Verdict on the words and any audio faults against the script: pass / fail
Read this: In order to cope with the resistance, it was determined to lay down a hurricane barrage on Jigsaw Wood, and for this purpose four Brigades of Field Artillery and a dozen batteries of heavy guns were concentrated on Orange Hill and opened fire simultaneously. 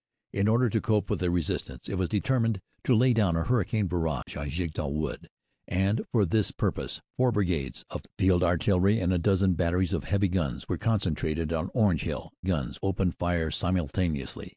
fail